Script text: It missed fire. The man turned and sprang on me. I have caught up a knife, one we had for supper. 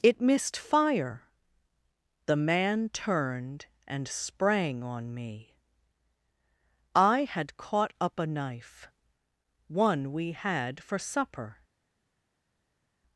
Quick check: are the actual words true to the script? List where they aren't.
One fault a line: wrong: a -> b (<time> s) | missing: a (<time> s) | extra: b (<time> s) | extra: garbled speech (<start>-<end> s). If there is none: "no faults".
wrong: have -> had (7.2 s)